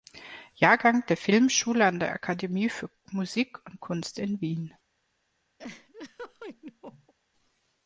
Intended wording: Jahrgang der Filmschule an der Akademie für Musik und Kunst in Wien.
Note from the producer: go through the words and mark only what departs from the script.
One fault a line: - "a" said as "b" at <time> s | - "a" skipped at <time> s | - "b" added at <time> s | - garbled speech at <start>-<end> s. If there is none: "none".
none